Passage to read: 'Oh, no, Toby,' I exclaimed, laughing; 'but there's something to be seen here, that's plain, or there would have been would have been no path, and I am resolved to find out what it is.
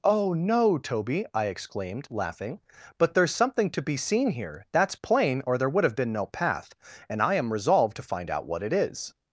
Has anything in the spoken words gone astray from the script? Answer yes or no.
yes